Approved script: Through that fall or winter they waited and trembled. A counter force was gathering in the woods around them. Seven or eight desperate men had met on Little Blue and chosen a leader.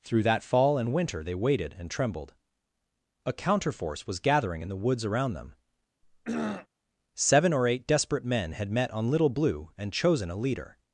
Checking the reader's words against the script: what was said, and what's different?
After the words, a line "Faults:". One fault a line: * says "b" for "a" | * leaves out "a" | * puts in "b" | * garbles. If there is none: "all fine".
Through that fall and winter they waited and trembled. A counter force was gathering in the woods around them. Seven or eight desperate men had met on Little Blue and chosen a leader.
Faults:
* says "and" for "or"